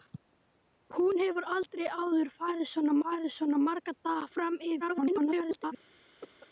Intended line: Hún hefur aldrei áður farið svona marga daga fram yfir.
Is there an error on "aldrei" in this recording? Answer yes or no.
no